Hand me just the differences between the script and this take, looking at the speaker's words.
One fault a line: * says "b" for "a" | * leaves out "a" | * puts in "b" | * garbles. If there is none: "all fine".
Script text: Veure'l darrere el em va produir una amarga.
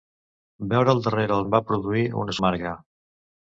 all fine